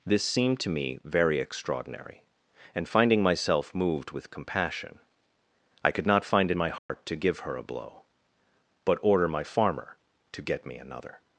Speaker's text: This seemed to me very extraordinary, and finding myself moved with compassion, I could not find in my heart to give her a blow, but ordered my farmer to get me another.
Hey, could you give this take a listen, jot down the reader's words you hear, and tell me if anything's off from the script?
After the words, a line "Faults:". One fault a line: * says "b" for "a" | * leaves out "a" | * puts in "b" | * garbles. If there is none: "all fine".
This seemed to me very extraordinary, and finding myself moved with compassion, I could not find in my heart to give her a blow, but order my farmer to get me another.
Faults:
* says "order" for "ordered"